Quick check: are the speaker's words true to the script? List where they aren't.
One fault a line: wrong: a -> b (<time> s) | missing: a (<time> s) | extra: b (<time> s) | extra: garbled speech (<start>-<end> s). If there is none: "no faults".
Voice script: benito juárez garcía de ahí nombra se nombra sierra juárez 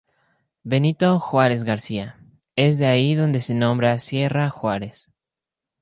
extra: es (2.5 s)
wrong: nombra -> donde (3.2 s)